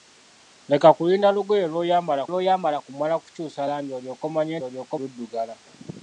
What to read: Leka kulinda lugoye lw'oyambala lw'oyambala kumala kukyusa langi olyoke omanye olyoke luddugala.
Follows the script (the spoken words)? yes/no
yes